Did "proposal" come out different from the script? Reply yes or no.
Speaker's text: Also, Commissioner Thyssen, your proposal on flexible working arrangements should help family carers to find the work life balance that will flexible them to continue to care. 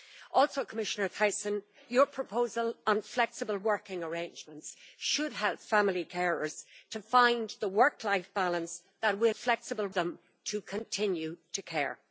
no